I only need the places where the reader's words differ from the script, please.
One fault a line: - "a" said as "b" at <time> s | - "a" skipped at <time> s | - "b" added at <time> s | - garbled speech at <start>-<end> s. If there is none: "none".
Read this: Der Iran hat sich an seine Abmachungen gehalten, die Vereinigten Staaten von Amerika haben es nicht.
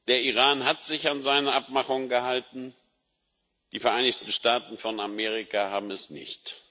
none